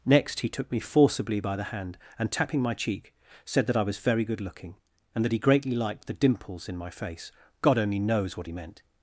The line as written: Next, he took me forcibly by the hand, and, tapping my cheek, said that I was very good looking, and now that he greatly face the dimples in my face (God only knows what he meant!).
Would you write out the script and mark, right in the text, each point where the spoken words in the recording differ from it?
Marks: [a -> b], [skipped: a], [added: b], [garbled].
Next, he took me forcibly by the hand, and, tapping my cheek, said that I was very good looking, and [skipped: now] that he greatly [face -> liked] the dimples in my face (God only knows what he meant!).